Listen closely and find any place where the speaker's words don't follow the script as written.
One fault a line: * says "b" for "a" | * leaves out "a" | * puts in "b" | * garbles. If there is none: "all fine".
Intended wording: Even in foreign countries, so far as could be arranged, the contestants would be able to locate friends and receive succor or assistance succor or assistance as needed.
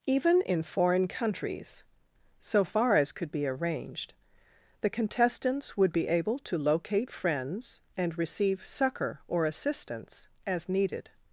* leaves out "succor or assistance"